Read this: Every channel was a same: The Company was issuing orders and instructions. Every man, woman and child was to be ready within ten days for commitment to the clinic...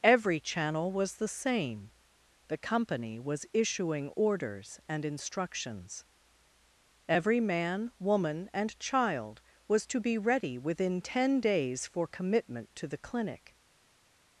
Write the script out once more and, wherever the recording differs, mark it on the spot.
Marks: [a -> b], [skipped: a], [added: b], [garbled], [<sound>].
Every channel was [a -> the] same: The Company was issuing orders and instructions. Every man, woman and child was to be ready within ten days for commitment to the clinic...